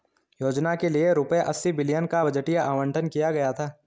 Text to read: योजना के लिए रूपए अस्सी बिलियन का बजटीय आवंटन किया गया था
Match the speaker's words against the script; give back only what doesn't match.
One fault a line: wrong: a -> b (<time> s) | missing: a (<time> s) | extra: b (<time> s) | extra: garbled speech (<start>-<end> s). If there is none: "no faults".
no faults